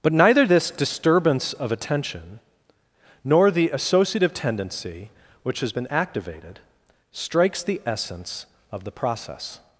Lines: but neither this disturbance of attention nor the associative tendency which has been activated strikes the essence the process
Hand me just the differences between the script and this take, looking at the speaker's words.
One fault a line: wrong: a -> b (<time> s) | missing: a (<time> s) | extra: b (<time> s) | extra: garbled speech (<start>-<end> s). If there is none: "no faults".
extra: of (8.7 s)